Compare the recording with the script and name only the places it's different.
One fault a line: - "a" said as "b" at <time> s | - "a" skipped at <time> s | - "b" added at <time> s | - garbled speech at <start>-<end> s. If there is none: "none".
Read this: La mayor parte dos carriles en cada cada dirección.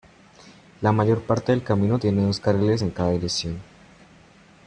- "del camino tiene" added at 1.5 s
- "cada" skipped at 3.1 s